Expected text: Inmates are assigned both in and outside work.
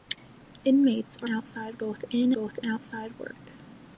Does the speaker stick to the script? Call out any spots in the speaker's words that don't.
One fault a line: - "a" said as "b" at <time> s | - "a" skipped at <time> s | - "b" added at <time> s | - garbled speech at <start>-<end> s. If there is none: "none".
- "assigned" said as "outside" at 1.3 s
- "and" said as "both" at 2.3 s